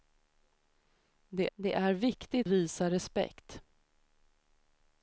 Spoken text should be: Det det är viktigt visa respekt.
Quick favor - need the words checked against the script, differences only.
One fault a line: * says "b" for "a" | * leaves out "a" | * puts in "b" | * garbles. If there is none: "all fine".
all fine